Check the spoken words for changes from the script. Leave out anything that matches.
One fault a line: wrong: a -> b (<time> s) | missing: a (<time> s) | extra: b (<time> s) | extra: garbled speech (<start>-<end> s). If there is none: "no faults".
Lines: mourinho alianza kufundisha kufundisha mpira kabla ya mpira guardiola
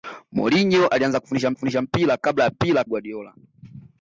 no faults